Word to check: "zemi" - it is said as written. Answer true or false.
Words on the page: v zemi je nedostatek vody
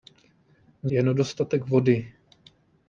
false